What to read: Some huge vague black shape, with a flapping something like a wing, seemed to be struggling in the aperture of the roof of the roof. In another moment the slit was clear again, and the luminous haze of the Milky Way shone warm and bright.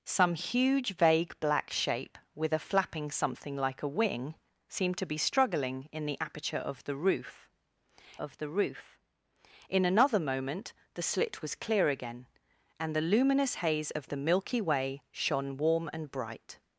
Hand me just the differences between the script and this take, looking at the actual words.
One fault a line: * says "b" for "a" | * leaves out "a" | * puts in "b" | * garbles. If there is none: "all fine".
all fine